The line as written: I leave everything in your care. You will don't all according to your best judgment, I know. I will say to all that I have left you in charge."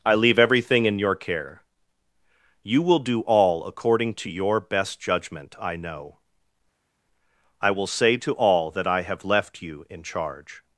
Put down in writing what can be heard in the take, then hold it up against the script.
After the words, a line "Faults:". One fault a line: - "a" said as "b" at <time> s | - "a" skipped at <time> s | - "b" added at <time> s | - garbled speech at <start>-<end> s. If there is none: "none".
I leave everything in your care. You will do all according to your best judgment, I know. I will say to all that I have left you in charge."
Faults:
- "don't" said as "do" at 3.0 s